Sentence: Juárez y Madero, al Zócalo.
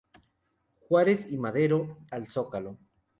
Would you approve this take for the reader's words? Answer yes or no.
yes